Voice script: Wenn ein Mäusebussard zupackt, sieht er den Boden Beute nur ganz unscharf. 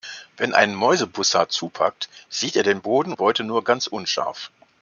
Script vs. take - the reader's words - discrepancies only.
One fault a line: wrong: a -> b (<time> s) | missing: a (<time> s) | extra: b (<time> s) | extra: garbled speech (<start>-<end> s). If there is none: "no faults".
no faults